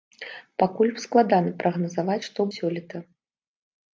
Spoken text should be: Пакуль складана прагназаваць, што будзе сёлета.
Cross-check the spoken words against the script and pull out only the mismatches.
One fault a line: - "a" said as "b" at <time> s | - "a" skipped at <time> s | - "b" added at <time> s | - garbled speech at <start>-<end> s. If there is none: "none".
- "будзе" skipped at 2.4 s